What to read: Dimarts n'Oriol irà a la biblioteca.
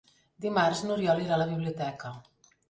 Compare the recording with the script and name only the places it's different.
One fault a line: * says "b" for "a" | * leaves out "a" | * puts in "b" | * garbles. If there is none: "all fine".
all fine